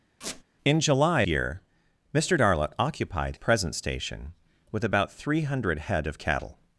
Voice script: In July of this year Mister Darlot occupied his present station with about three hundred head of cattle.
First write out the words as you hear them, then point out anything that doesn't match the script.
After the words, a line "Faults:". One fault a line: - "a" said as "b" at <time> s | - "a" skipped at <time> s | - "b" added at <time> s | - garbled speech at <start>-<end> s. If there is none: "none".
In July year Mister Darlot occupied present station with about three hundred head of cattle.
Faults:
- "of this" skipped at 1.2 s
- "his" skipped at 3.4 s